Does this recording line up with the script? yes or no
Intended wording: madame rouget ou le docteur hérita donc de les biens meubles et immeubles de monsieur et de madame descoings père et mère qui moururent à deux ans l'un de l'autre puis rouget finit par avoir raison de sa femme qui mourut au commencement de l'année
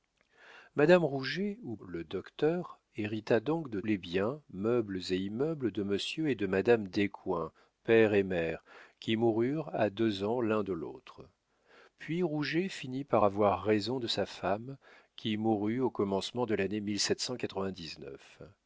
yes